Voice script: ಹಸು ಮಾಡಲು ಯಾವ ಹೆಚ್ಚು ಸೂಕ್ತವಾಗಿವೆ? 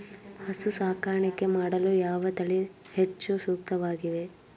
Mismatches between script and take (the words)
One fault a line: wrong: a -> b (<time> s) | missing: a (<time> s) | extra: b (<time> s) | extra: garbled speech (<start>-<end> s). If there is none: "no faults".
extra: ಸಾಕಾಣಿಕೆ (0.7 s)
extra: ತಳಿ (2.3 s)